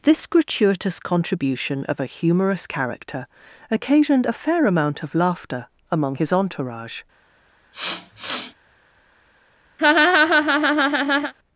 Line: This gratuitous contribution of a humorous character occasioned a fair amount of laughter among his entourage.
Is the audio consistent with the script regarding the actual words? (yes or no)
yes